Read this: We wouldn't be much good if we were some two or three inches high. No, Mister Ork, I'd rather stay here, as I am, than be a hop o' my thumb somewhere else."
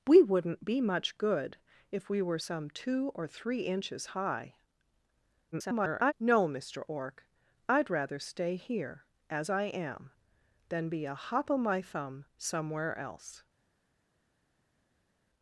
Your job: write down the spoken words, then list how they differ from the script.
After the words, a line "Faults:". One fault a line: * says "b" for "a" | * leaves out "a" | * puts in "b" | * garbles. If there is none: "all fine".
We wouldn't be much good if we were some two or three inches high. [garbled] No, Mister Ork, I'd rather stay here, as I am, than be a hop o' my thumb somewhere else."
Faults:
* garbles